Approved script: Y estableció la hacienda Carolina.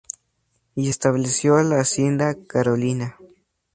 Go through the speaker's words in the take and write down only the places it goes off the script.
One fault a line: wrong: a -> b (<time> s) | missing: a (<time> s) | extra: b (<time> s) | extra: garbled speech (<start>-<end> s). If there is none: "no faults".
no faults